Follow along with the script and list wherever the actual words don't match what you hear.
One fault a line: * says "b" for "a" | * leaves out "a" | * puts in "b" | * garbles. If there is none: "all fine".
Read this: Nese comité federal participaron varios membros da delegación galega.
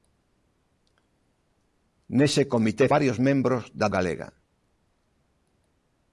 * leaves out "federal participaron"
* leaves out "delegación"